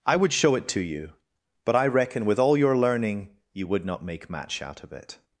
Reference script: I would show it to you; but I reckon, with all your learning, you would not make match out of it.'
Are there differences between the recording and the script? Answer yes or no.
no